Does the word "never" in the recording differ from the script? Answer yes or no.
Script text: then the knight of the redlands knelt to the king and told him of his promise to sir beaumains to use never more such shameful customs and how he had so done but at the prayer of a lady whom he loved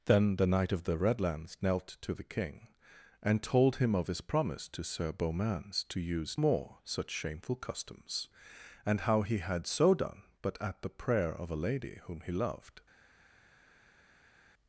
yes